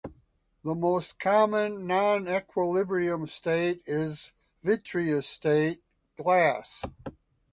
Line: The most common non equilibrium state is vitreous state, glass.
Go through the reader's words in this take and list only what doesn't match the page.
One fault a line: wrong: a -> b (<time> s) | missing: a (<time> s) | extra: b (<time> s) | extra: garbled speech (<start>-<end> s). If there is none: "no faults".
no faults